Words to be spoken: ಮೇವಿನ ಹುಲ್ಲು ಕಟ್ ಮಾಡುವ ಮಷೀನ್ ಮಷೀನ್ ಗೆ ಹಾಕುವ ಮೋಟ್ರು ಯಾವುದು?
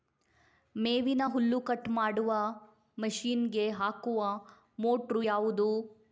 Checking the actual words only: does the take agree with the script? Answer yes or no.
no